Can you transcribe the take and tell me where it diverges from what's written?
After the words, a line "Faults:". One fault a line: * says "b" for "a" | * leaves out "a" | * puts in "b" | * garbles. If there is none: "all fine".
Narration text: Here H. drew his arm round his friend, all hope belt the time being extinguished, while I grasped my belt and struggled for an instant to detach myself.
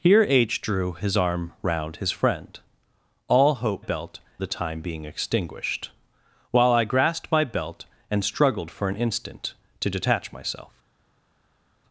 Here H. drew his arm round his friend, all hope belt the time being extinguished, while I grasped my belt and struggled for an instant to detach myself.
Faults:
all fine